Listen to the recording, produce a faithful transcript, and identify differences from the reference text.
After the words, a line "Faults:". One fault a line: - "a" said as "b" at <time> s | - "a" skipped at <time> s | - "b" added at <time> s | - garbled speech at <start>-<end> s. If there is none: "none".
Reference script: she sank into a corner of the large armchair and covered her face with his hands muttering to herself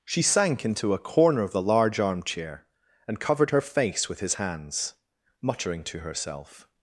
she sank into a corner of the large armchair and covered her face with his hands muttering to herself
Faults:
none